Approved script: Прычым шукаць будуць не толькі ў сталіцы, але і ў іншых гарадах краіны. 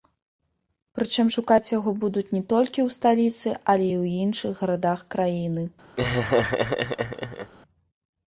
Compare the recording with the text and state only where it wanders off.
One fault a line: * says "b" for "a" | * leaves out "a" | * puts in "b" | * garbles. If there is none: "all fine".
* puts in "яго"